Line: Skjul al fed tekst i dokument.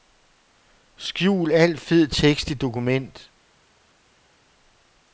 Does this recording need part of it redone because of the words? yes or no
no